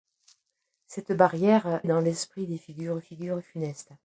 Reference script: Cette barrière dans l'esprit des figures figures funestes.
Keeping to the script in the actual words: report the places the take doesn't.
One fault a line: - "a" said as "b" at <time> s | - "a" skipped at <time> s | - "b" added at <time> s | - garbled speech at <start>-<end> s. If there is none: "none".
none